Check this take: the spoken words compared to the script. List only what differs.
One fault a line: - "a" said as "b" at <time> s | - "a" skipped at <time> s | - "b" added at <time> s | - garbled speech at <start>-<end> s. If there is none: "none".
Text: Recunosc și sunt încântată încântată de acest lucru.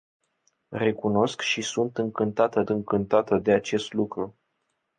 none